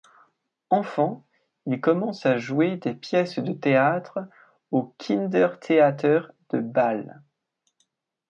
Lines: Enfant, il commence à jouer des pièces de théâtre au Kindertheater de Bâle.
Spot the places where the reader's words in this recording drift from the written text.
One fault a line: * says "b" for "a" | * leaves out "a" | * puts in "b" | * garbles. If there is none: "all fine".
all fine